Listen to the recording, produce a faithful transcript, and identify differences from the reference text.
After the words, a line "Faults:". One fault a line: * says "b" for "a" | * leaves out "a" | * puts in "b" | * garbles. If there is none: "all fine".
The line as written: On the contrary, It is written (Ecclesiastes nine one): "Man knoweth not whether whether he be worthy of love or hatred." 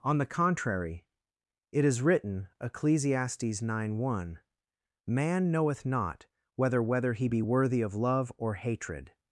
On the contrary, It is written (Ecclesiastes nine one): "Man knoweth not whether whether he be worthy of love or hatred."
Faults:
all fine